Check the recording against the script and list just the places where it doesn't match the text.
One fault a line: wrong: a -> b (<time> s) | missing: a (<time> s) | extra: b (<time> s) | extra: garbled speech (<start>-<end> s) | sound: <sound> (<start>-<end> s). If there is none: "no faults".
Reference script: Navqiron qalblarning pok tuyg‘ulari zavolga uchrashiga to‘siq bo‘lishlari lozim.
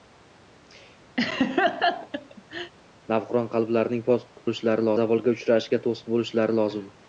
sound: laugh (1.2-2.7 s)
wrong: tuyg‘ulari -> bo‘lishlari (4.5 s)